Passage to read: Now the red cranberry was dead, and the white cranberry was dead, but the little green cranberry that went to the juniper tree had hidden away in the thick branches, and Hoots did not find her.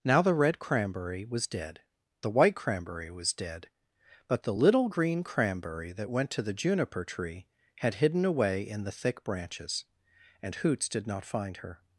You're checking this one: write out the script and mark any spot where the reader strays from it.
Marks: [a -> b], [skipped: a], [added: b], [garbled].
Now the red cranberry was dead, [skipped: and] the white cranberry was dead, but the little green cranberry that went to the juniper tree had hidden away in the thick branches, and Hoots did not find her.